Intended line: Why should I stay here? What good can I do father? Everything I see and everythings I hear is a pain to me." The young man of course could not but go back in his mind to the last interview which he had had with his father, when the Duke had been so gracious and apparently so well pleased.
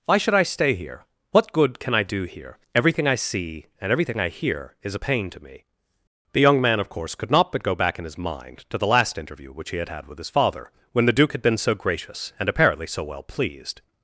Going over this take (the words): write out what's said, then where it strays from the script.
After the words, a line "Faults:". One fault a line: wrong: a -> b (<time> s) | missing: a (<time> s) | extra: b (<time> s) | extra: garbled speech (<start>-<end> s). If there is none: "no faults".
Why should I stay here? What good can I do here? Everything I see and everything I hear is a pain to me." The young man of course could not but go back in his mind to the last interview which he had had with his father, when the Duke had been so gracious and apparently so well pleased.
Faults:
wrong: father -> here (2.2 s)
wrong: everythings -> everything (3.9 s)